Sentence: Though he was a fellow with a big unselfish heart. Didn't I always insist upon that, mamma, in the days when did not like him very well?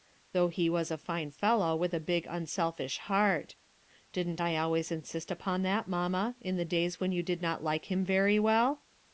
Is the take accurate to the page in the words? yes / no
no